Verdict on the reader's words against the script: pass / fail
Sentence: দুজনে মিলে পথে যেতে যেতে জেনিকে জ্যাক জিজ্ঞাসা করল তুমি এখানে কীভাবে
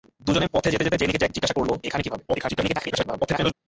fail